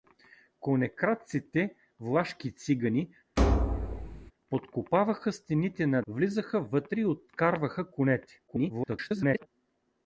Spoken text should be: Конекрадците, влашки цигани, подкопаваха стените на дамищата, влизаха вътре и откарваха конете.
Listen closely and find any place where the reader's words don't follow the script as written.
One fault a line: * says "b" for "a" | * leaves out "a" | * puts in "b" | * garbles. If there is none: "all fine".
* leaves out "дамищата"
* garbles